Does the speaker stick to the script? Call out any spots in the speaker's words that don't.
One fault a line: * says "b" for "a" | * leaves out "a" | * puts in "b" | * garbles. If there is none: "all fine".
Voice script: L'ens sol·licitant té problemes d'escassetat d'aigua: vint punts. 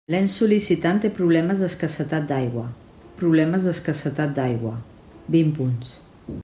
* puts in "problemes d'escassetat d'aigua"